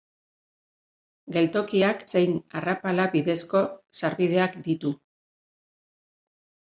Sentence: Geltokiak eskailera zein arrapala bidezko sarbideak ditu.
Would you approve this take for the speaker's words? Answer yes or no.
no